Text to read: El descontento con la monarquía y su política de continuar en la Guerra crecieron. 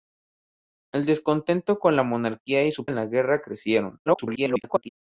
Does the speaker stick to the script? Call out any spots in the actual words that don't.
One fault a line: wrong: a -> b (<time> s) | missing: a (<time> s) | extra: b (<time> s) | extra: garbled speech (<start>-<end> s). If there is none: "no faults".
missing: política de continuar (2.9 s)
extra: garbled speech (4.1-4.9 s)